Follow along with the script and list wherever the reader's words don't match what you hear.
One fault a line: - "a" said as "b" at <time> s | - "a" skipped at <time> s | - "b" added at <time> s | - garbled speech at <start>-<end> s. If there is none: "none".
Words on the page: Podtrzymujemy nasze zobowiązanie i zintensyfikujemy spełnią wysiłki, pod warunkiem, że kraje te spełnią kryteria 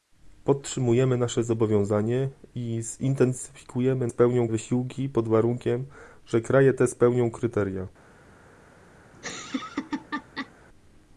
none